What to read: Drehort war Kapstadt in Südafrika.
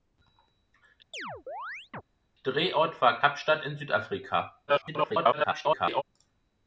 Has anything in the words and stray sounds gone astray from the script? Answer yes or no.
yes